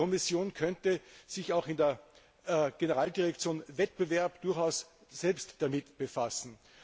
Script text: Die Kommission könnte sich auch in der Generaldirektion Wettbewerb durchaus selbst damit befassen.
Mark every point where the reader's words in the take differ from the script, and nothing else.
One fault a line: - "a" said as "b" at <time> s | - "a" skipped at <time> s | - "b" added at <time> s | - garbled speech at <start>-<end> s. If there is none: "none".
none